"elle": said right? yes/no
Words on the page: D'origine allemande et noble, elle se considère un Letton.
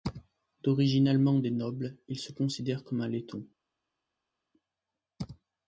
no